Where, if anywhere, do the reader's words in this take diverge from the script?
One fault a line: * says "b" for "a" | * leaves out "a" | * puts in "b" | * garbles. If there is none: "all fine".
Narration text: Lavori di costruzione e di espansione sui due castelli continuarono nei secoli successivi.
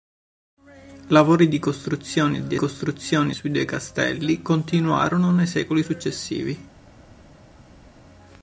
* says "costruzione" for "espansione"